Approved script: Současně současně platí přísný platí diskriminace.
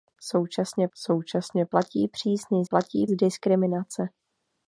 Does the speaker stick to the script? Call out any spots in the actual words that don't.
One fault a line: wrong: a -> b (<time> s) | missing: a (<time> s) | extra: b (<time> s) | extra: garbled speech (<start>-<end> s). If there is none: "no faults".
no faults